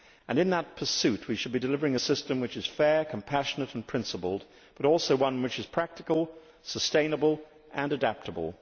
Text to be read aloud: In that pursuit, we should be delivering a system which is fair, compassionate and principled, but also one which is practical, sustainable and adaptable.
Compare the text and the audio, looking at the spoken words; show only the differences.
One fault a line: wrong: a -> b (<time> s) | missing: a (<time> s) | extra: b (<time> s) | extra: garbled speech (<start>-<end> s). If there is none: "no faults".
no faults